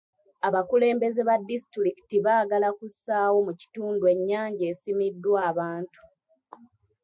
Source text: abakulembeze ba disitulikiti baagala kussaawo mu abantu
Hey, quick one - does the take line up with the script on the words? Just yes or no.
no